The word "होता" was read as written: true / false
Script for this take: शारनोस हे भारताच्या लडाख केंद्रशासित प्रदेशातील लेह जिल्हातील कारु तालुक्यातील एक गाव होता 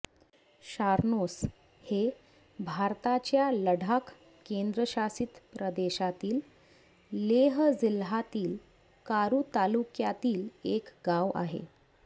false